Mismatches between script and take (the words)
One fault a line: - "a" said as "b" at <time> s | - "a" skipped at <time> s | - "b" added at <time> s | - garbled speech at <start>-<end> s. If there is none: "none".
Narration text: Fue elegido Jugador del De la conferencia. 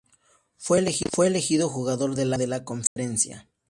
none